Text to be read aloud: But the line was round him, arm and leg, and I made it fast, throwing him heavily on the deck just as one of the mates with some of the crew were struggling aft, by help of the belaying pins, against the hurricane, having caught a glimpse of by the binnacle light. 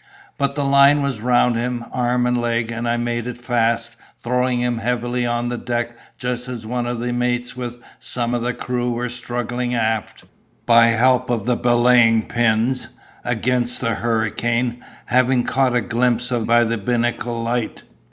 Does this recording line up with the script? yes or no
yes